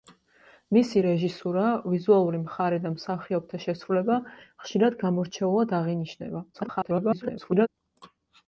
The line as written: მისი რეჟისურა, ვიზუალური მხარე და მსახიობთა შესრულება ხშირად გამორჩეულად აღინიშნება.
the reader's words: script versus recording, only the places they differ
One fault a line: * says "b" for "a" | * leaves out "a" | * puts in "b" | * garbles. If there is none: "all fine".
* garbles